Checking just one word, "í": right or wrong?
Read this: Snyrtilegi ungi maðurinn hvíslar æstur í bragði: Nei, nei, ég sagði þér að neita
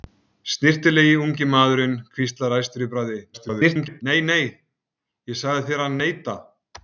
right